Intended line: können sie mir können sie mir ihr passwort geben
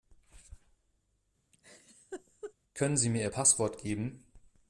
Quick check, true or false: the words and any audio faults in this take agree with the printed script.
false